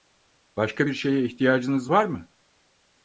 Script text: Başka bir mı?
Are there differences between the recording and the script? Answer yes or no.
yes